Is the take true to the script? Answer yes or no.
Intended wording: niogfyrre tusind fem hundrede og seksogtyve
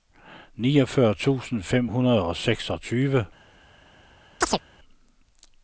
yes